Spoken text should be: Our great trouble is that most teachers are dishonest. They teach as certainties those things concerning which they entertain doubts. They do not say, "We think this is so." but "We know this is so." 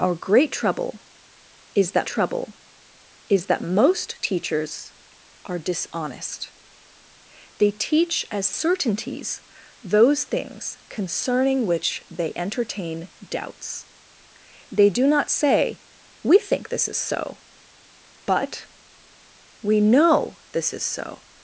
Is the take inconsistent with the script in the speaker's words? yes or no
yes